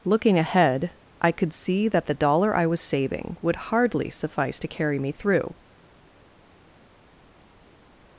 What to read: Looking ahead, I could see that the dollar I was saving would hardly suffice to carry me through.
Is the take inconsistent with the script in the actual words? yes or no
no